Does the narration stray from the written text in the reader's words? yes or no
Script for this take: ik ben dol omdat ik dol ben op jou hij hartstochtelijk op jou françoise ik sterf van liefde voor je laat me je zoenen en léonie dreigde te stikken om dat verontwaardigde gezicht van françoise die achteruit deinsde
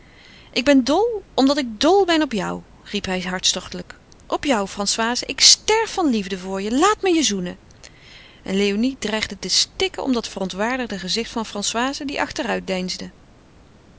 yes